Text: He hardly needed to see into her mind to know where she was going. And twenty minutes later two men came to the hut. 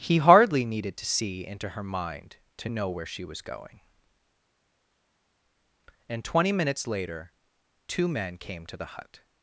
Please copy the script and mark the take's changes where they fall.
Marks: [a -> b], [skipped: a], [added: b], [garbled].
He hardly needed to see into her mind to know where she was going. And twenty minutes later two men came to the hut.